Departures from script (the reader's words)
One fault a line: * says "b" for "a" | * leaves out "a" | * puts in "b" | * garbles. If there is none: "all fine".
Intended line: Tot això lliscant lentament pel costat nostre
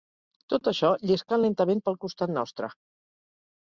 all fine